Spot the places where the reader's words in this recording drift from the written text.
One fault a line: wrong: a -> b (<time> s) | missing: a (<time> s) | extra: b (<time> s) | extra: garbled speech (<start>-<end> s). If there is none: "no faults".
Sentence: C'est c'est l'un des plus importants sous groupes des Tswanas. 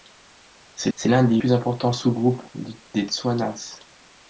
no faults